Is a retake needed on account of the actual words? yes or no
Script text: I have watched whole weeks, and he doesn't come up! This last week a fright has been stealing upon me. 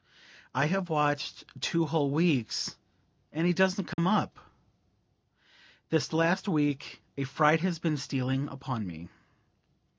yes